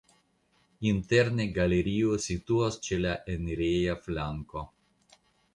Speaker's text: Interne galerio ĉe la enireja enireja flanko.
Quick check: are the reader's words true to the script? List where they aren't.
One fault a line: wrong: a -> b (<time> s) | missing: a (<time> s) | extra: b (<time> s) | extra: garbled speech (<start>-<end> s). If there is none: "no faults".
extra: situas (2.3 s)
missing: enireja (4.0 s)